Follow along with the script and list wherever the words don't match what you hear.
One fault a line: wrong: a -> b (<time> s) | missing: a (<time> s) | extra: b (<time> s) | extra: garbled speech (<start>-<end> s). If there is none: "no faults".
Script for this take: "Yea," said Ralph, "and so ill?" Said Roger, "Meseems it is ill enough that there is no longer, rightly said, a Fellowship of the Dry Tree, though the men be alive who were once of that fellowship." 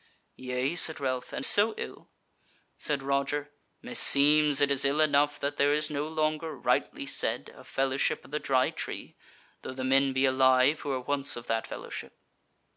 no faults